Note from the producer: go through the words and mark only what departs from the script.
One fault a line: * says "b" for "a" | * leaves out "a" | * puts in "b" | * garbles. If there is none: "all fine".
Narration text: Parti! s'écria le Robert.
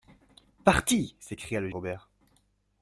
all fine